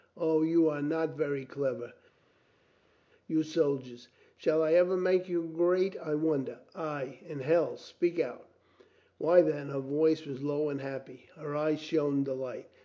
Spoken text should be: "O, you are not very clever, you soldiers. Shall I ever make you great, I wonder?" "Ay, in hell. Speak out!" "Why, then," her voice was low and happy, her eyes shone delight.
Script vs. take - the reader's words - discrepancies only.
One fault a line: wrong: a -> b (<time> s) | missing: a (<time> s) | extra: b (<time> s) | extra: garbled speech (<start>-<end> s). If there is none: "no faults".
no faults